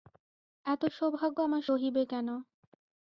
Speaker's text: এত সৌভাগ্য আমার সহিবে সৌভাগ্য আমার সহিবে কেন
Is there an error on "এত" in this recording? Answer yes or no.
no